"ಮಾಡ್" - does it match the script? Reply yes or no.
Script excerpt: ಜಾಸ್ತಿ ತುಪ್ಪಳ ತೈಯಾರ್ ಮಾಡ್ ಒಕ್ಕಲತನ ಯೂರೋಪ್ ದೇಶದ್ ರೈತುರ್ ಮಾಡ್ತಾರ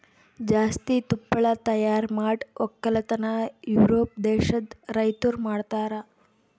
yes